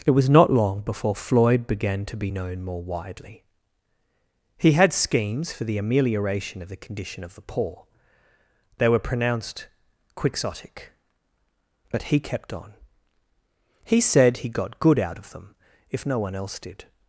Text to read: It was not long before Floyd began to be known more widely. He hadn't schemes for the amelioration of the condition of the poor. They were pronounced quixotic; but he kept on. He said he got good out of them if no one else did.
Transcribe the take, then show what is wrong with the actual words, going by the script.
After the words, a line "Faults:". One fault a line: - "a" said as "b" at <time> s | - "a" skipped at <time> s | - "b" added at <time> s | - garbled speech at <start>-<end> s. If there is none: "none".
It was not long before Floyd began to be known more widely. He had schemes for the amelioration of the condition of the poor. They were pronounced quixotic; but he kept on. He said he got good out of them if no one else did.
Faults:
- "hadn't" said as "had" at 4.7 s